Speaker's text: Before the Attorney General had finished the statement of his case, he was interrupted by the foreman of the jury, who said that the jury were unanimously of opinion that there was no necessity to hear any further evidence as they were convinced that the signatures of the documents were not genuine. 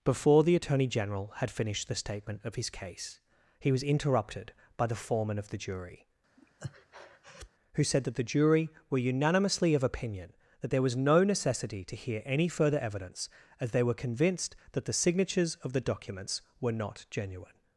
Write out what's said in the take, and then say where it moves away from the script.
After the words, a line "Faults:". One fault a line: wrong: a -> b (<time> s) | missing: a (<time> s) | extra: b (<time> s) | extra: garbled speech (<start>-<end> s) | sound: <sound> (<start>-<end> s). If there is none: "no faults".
Before the Attorney General had finished the statement of his case, he was interrupted by the foreman of the jury, who said that the jury were unanimously of opinion that there was no necessity to hear any further evidence as they were convinced that the signatures of the documents were not genuine.
Faults:
sound: breath (6.4-7.5 s)